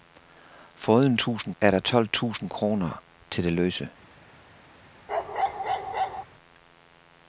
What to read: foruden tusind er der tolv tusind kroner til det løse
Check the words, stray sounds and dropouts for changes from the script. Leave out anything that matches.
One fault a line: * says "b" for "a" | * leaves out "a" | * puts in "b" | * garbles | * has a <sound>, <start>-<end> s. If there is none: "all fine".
* has a bark, 5.1-6.2 s